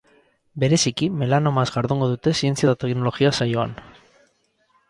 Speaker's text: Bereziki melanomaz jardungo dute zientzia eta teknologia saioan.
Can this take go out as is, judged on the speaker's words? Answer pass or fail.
pass